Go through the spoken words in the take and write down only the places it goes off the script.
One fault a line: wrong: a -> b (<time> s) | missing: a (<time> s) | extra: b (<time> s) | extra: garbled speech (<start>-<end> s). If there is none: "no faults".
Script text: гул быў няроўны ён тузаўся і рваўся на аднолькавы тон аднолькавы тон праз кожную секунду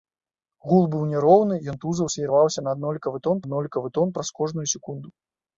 no faults